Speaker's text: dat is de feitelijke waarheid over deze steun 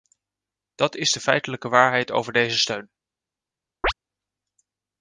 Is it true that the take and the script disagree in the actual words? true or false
false